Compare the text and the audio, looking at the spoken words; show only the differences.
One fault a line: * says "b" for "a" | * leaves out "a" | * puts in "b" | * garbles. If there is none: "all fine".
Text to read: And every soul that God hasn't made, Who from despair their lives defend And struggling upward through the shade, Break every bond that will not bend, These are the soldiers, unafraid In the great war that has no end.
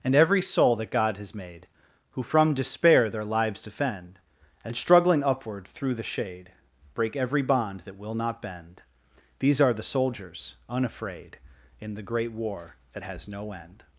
* says "has" for "hasn't"